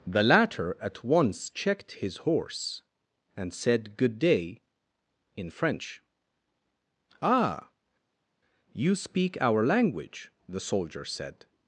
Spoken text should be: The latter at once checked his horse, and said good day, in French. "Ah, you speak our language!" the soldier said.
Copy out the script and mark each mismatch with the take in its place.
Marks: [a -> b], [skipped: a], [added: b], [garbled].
The latter at once checked his horse, and said good day, in French. "Ah, you speak our language!" the soldier said.